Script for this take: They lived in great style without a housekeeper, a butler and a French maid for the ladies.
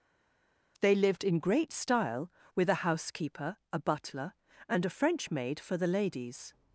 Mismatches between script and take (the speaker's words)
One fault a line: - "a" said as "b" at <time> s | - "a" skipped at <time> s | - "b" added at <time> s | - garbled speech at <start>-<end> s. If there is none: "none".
- "without" said as "with" at 2.5 s